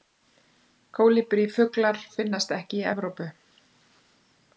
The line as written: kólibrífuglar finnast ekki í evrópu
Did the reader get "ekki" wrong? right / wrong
right